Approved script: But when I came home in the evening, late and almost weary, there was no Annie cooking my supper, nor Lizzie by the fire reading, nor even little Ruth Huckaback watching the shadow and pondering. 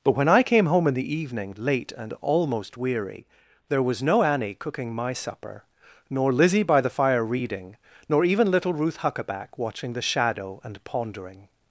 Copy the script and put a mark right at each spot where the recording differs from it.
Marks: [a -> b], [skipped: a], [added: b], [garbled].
But when I came home in the evening, late and almost weary, there was no Annie cooking my supper, nor Lizzie by the fire reading, nor even little Ruth Huckaback watching the shadow and pondering.